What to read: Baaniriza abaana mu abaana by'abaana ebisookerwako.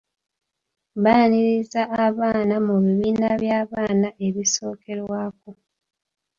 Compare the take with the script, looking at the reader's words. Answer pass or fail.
fail